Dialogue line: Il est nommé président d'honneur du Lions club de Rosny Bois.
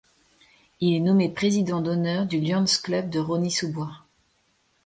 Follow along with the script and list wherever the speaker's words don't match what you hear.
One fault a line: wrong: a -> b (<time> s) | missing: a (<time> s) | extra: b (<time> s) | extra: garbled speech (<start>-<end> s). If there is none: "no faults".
extra: sous (3.5 s)